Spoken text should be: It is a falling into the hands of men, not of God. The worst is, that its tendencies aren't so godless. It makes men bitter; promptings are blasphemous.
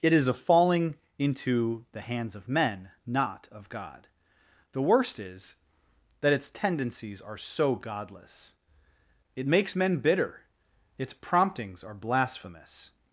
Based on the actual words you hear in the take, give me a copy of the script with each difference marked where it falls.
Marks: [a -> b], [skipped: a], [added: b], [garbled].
It is a falling into the hands of men, not of God. The worst is, that its tendencies [aren't -> are] so godless. It makes men bitter; [added: its] promptings are blasphemous.